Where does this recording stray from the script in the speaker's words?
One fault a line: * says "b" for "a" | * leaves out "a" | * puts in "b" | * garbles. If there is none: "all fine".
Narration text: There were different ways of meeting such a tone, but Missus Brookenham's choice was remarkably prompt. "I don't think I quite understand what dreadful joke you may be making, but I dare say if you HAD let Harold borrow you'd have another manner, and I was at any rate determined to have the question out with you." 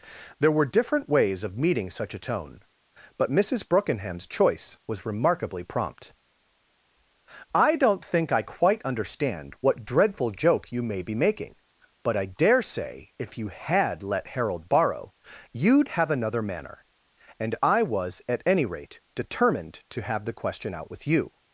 all fine